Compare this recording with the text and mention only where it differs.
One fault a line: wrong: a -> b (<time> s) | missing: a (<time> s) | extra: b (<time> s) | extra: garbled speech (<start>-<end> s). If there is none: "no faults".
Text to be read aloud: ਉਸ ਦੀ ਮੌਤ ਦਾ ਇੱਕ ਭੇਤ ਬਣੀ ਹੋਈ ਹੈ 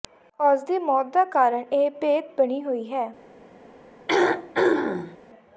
extra: ਕਾਰਨ (1.3 s)